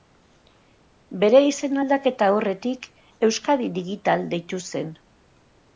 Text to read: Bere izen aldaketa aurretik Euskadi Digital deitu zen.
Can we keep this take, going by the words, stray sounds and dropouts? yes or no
yes